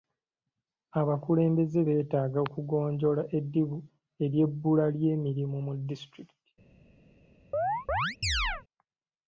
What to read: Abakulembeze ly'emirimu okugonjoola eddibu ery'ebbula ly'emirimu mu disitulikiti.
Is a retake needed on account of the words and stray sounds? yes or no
yes